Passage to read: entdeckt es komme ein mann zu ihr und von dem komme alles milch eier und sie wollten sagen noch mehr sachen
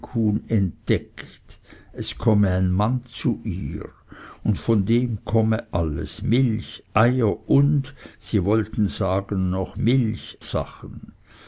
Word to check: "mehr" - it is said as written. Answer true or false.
false